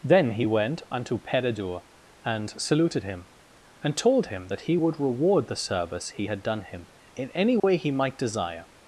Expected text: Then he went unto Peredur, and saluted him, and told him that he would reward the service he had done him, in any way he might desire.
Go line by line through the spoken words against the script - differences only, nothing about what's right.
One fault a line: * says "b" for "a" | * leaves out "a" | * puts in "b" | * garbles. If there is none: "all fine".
all fine